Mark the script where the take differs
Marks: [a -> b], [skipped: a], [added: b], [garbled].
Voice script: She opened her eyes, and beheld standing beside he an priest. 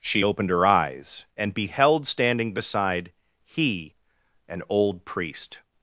She opened her eyes, and beheld standing beside he an [added: old] priest.